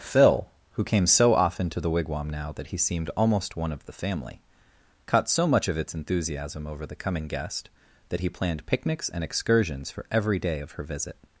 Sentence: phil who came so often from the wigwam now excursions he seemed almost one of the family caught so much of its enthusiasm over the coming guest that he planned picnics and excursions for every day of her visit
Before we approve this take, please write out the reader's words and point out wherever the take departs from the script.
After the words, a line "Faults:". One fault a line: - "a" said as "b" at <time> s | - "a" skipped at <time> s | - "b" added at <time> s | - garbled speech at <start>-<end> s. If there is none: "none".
phil who came so often to the wigwam now that he seemed almost one of the family caught so much of its enthusiasm over the coming guest that he planned picnics and excursions for every day of her visit
Faults:
- "from" said as "to" at 1.7 s
- "excursions" said as "that" at 2.5 s